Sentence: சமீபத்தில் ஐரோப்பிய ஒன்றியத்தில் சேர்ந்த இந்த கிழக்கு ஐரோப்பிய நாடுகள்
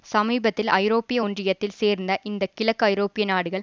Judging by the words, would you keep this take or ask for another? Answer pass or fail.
pass